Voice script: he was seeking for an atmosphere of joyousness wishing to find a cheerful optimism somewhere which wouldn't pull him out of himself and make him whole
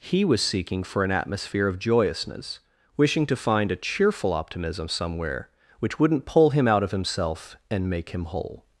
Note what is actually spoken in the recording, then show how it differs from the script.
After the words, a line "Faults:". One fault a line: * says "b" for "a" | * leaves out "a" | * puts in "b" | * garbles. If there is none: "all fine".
he was seeking for an atmosphere of joyousness wishing to find a cheerful optimism somewhere which wouldn't pull him out of himself and make him whole
Faults:
all fine